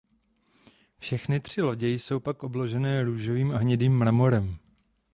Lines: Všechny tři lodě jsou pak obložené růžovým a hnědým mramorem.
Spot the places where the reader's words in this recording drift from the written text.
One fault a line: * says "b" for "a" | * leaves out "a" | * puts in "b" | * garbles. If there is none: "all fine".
all fine